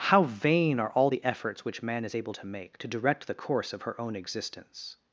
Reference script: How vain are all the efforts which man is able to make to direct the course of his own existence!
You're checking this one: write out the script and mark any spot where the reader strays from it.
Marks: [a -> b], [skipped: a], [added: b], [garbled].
How vain are all the efforts which man is able to make to direct the course of [his -> her] own existence!